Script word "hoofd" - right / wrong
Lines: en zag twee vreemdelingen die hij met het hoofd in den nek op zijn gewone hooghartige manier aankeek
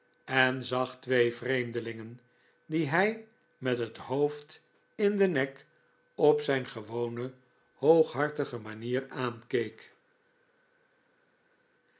right